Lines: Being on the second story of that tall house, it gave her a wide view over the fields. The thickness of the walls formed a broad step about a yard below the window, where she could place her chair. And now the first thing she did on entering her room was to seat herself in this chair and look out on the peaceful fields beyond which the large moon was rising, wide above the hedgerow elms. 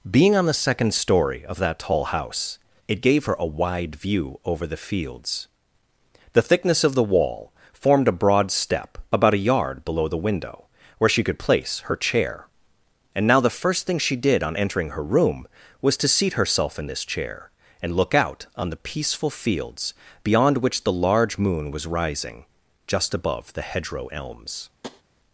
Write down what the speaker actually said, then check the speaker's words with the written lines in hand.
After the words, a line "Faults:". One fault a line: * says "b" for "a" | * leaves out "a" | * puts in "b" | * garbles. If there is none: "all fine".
Being on the second story of that tall house, it gave her a wide view over the fields. The thickness of the wall formed a broad step about a yard below the window, where she could place her chair. And now the first thing she did on entering her room was to seat herself in this chair and look out on the peaceful fields beyond which the large moon was rising, just above the hedgerow elms.
Faults:
* says "wall" for "walls"
* says "just" for "wide"